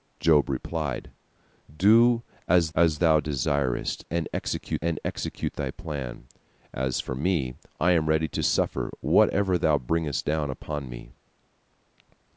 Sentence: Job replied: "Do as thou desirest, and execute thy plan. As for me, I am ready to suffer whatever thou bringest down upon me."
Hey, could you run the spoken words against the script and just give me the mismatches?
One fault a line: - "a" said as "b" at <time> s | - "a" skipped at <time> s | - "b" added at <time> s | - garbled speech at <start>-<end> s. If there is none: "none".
- "as" added at 2.7 s
- "and execute" added at 4.8 s